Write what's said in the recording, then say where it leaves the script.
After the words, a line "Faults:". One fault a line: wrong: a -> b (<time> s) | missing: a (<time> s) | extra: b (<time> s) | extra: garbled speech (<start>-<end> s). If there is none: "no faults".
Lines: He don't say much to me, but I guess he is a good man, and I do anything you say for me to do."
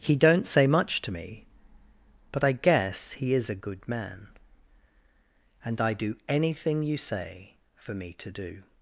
He don't say much to me, but I guess he is a good man, and I do anything you say for me to do."
Faults:
no faults